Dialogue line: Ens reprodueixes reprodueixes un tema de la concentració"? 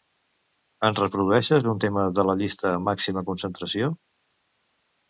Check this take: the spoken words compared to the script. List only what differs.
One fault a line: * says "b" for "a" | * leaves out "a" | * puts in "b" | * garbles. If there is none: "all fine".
* leaves out "reprodueixes"
* puts in "llista màxima"